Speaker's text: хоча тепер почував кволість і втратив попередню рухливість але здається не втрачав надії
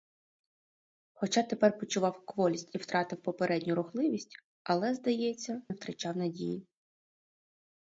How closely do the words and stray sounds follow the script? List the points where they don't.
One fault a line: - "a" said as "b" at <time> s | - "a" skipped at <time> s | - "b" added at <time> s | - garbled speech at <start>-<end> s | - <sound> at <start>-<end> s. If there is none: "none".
none